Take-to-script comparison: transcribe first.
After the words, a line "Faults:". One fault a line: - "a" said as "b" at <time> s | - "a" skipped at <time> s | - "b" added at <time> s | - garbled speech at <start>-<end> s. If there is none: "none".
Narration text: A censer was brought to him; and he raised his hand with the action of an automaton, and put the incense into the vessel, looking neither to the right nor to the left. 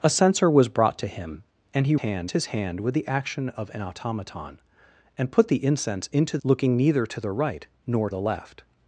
A censer was brought to him; and he hand his hand with the action of an automaton, and put the incense into looking neither to the right nor the left.
Faults:
- "raised" said as "hand" at 2.0 s
- "the vessel" skipped at 6.4 s
- "to" skipped at 8.1 s